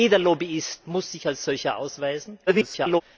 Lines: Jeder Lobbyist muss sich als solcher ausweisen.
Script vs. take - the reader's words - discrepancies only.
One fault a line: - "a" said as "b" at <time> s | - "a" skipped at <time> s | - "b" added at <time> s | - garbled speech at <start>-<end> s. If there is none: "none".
- garbled speech at 2.5-3.0 s